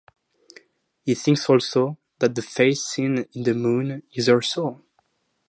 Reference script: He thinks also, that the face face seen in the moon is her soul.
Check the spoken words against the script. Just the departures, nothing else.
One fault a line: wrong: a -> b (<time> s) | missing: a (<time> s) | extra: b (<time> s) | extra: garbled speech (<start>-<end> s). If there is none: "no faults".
missing: face (2.8 s)